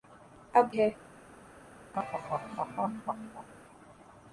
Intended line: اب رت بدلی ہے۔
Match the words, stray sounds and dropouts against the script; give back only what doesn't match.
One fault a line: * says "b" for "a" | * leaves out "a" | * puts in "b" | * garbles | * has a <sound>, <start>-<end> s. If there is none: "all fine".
* leaves out "رت بدلی"
* has a laugh, 1.9-3.5 s